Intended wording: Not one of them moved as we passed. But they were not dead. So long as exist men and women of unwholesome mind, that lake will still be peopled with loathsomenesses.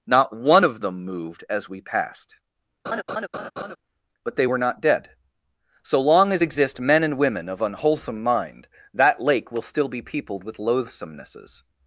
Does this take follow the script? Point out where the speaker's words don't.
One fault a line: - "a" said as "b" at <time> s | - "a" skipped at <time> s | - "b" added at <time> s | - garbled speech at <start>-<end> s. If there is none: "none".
none